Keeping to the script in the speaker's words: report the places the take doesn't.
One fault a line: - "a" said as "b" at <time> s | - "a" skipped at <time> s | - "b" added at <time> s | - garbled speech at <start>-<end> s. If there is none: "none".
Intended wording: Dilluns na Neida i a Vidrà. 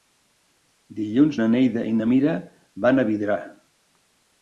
- "na Mira van" added at 2.0 s